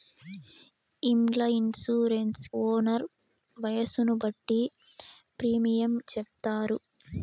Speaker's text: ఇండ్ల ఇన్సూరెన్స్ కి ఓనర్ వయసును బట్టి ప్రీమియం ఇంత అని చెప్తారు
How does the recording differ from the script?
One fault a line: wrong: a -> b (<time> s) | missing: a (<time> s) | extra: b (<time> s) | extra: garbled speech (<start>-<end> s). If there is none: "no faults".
missing: కి (2.5 s)
missing: ఇంత అని (5.9 s)